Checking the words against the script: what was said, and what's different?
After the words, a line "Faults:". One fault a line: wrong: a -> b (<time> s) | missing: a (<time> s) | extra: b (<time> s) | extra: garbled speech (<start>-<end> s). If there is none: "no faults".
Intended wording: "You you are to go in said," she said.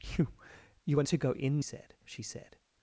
"You you are to go in said," she said.
Faults:
no faults